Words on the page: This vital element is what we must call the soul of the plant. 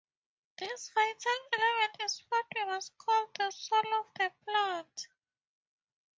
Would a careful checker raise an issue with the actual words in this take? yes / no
no